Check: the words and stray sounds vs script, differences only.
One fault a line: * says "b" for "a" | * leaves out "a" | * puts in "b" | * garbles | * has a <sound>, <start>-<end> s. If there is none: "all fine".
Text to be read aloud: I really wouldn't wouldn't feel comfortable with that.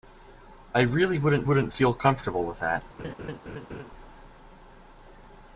* has a laugh, 3.0-3.9 s